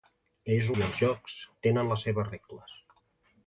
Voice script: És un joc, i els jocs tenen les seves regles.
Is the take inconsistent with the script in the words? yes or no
yes